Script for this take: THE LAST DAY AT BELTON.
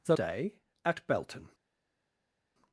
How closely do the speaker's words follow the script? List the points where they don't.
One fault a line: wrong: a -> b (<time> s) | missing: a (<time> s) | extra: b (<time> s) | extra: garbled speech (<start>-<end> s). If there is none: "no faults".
missing: LAST (0.1 s)